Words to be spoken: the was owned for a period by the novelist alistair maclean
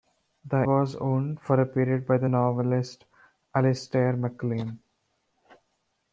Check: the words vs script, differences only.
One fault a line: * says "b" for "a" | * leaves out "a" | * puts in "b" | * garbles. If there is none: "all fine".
all fine